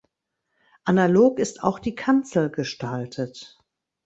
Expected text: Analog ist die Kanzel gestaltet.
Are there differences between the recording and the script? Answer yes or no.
yes